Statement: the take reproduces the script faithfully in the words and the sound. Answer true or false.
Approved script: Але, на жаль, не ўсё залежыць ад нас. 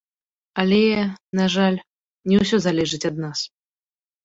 true